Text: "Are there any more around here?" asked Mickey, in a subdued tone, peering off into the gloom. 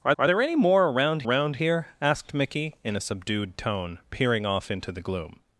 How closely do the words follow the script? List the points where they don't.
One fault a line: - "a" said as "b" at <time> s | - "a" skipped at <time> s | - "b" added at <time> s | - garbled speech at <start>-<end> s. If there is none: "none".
- "are" added at 0.2 s
- "around" added at 1.2 s